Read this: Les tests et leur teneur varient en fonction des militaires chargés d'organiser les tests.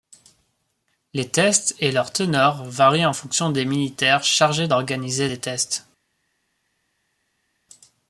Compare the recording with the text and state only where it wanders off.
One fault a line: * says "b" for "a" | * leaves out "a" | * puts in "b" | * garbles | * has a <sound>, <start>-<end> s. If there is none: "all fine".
all fine